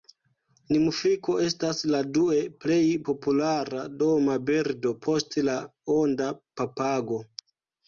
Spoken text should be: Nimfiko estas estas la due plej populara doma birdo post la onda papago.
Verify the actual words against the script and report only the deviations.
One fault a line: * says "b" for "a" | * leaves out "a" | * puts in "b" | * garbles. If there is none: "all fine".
* leaves out "estas"